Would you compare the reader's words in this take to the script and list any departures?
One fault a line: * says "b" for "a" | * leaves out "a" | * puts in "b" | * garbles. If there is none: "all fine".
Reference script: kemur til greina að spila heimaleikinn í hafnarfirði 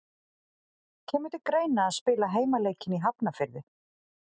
all fine